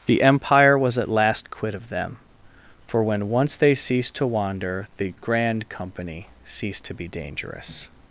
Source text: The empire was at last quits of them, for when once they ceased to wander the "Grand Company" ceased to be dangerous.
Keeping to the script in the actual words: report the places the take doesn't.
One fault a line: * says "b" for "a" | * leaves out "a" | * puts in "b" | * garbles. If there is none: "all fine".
* says "quit" for "quits"